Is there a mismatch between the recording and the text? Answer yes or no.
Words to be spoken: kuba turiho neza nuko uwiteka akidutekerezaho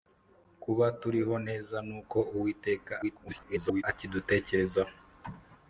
yes